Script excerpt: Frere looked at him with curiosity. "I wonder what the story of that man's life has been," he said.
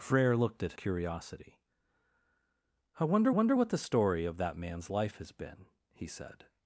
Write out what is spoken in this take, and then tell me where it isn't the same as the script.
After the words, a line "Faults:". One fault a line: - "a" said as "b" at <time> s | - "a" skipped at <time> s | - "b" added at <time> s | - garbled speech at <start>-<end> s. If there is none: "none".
Frere looked at curiosity. "I wonder wonder what the story of that man's life has been," he said.
Faults:
- "him with" skipped at 0.7 s
- "wonder" added at 3.3 s